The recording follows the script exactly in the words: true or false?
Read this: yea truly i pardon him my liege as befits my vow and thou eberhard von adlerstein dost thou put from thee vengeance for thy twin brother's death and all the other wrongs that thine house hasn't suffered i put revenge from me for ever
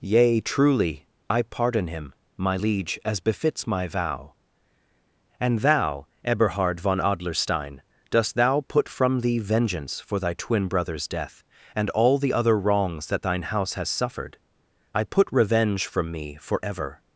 false